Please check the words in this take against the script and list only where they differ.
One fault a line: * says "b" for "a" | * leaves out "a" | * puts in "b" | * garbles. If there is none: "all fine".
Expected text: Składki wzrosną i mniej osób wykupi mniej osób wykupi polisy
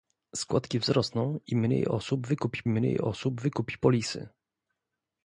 all fine